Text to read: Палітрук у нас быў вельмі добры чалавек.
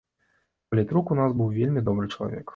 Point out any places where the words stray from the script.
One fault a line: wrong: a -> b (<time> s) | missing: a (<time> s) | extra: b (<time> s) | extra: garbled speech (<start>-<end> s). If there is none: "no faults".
no faults